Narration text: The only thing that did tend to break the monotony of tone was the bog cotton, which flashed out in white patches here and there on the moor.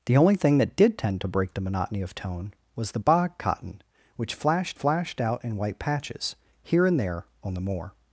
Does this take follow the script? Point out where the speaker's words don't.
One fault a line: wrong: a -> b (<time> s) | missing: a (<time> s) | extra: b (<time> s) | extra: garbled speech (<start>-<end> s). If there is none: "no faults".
extra: flashed (4.7 s)